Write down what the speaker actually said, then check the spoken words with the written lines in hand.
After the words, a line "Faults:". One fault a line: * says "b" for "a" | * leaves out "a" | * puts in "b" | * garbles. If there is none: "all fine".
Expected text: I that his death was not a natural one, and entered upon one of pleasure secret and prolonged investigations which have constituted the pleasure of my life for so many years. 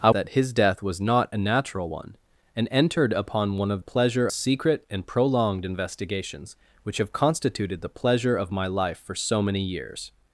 I that his death was not a natural one, and entered upon one of pleasure secret and prolonged investigations which have constituted the pleasure of my life for so many years.
Faults:
all fine